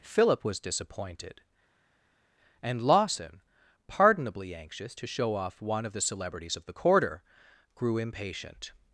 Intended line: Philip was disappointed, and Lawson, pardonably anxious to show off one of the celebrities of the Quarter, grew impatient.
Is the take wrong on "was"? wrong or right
right